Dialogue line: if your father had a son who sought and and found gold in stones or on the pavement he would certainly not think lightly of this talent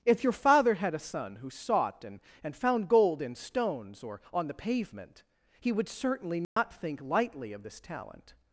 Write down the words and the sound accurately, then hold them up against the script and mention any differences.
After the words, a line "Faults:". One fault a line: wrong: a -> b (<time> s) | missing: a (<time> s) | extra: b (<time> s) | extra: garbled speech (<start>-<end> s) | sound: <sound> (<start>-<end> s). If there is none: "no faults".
if your father had a son who sought and and found gold in stones or on the pavement he would certainly not think lightly of this talent
Faults:
sound: dropout (6.4-6.6 s)